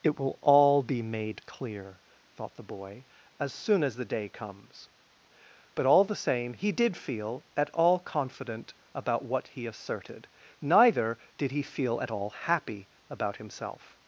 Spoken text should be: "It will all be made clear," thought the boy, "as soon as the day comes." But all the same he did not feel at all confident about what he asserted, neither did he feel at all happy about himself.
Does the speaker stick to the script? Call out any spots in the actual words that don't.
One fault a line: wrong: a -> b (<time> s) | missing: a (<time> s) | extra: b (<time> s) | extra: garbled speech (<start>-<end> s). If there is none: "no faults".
missing: not (7.0 s)